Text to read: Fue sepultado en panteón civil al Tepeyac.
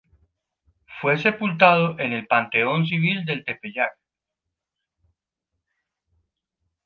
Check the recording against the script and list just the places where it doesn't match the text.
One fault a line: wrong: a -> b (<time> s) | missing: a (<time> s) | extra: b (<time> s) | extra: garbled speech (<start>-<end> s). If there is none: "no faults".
extra: el (2.1 s)
wrong: al -> del (3.3 s)